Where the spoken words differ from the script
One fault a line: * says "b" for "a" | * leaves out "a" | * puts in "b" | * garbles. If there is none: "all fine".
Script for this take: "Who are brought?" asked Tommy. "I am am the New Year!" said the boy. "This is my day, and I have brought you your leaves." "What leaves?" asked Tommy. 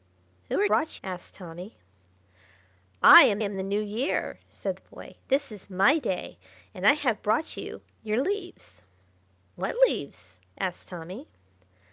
all fine